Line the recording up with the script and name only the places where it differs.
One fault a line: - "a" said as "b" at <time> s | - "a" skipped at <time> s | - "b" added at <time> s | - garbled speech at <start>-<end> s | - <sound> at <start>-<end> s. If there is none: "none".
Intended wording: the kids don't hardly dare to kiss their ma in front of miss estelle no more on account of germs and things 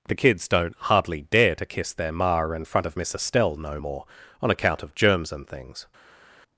none